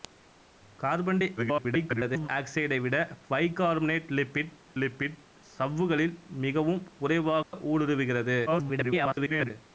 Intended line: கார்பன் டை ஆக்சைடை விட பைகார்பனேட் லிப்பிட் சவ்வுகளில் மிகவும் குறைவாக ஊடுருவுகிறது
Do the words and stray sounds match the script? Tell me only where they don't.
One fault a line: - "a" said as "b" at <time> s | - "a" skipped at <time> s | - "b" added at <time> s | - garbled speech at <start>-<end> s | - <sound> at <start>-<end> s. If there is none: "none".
- garbled speech at 1.4-2.3 s
- "லிப்பிட்" added at 4.8 s
- dropout at 7.4-7.5 s
- garbled speech at 8.5-9.5 s